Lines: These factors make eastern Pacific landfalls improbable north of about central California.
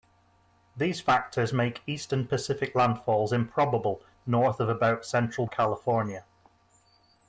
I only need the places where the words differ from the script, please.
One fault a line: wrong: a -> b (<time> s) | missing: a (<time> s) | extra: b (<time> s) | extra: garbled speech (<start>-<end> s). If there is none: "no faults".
no faults